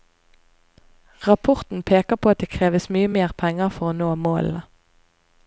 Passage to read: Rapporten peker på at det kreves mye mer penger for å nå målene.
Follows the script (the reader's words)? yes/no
yes